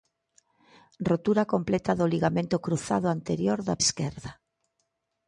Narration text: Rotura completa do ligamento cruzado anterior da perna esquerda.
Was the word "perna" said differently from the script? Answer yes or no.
yes